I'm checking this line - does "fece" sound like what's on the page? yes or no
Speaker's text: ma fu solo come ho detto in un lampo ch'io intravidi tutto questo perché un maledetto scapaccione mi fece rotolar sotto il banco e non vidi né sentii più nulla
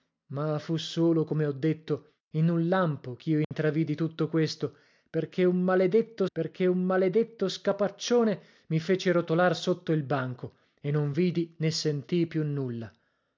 yes